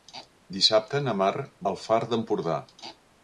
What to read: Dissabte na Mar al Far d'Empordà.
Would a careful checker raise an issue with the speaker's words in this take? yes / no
no